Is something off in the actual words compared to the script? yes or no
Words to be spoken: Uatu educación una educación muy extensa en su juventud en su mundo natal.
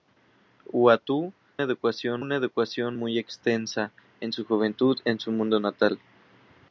no